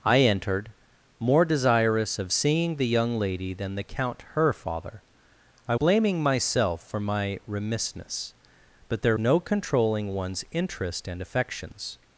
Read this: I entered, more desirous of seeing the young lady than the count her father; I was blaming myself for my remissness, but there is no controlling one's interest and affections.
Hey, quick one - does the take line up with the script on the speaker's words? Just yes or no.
no